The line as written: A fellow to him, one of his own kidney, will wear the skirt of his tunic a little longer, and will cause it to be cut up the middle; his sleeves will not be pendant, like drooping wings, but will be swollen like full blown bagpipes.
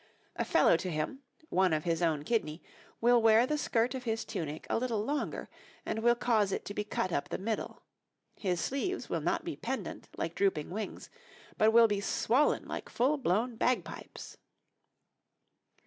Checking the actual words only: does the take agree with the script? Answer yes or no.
yes